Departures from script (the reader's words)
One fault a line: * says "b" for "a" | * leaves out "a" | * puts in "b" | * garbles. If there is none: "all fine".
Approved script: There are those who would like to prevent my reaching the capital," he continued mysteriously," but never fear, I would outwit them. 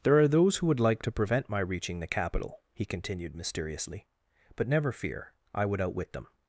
all fine